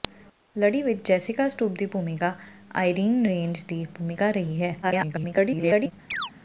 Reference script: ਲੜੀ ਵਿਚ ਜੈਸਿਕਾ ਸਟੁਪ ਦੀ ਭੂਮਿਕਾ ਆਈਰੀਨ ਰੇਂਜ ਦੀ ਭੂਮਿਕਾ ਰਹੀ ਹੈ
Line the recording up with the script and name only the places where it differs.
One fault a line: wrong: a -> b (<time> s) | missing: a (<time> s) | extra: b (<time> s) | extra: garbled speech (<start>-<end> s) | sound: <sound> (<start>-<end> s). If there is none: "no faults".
extra: garbled speech (4.8-5.9 s)
sound: chirp (6.1-6.3 s)